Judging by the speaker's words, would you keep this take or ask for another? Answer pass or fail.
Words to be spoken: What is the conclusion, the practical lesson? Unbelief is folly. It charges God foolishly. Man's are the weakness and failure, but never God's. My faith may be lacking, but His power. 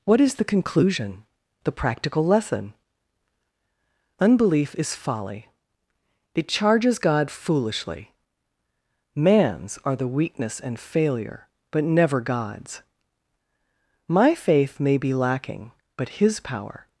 pass